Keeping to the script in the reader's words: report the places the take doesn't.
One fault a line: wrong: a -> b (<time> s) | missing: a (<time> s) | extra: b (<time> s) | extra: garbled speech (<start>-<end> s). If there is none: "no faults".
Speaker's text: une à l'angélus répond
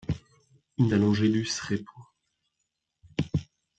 no faults